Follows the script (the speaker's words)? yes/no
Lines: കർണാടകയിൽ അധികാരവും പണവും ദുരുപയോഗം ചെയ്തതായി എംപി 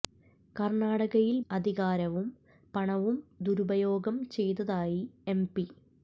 yes